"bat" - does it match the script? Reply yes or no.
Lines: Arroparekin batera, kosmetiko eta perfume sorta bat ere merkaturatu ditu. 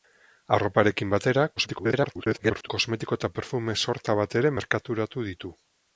yes